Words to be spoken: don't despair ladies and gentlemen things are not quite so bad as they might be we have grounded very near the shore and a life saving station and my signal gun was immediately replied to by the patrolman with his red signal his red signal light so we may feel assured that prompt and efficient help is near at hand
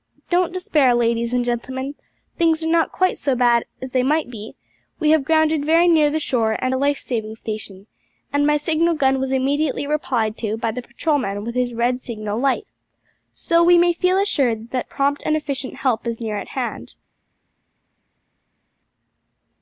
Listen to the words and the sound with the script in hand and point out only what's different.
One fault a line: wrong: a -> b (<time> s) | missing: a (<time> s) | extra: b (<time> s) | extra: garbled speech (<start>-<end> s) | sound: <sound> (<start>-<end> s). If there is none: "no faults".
missing: his red signal (12.4 s)